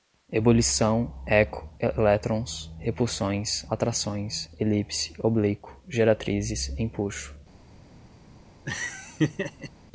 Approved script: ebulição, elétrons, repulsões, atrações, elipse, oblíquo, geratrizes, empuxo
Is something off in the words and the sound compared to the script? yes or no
yes